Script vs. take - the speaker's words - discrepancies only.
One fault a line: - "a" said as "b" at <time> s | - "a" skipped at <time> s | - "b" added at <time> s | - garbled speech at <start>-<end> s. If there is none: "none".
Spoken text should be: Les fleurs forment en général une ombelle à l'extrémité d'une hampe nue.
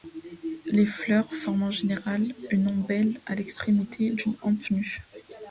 none